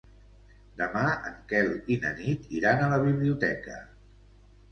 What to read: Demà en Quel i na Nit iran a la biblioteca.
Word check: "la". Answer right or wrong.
right